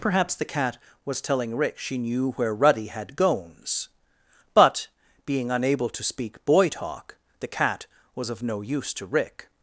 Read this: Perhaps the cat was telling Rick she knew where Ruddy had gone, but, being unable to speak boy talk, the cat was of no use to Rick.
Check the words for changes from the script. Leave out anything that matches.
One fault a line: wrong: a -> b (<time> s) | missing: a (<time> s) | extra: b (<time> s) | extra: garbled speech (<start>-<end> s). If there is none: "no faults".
wrong: gone -> gones (3.1 s)